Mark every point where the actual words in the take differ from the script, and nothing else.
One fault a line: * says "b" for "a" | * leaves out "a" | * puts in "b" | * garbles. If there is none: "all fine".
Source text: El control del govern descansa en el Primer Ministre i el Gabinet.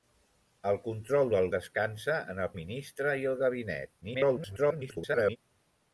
* leaves out "govern"
* leaves out "Primer"
* garbles